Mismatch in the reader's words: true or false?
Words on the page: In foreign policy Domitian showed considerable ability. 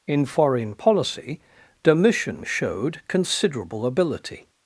false